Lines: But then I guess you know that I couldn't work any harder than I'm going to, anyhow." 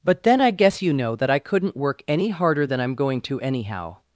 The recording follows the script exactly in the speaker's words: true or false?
true